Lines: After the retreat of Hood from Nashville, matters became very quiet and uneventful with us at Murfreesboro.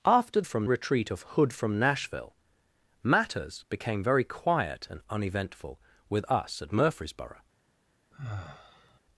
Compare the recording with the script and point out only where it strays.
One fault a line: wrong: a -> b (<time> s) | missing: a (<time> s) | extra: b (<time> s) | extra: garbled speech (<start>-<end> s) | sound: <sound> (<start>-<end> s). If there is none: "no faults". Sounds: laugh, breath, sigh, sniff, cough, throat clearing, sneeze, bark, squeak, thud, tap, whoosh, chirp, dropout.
wrong: the -> from (0.4 s)
sound: sigh (8.1-9.0 s)